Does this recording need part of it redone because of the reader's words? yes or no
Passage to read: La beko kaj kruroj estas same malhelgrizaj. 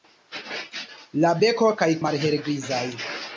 yes